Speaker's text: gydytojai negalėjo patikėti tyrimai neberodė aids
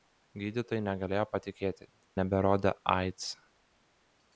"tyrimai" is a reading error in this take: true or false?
true